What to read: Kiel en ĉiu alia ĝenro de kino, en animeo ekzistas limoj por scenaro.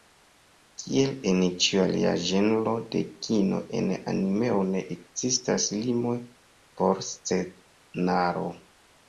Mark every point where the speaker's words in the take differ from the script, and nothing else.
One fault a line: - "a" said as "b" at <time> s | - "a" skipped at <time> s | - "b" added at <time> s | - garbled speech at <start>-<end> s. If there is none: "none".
- "ne" added at 4.7 s